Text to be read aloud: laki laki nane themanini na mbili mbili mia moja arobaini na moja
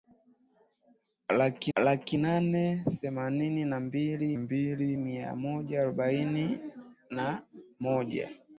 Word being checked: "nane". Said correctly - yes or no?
yes